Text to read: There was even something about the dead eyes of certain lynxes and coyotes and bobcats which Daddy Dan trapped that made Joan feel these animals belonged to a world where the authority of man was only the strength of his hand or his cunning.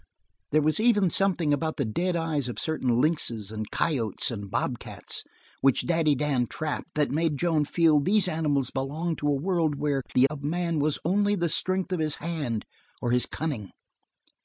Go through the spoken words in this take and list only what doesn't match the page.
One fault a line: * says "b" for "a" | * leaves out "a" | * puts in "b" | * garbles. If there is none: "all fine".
* leaves out "authority"